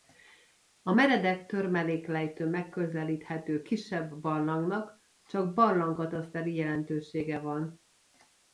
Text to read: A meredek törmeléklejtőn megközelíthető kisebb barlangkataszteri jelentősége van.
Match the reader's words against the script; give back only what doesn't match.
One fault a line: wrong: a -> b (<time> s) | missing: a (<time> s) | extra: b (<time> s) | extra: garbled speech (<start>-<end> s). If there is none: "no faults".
extra: barlangnak csak (4.2 s)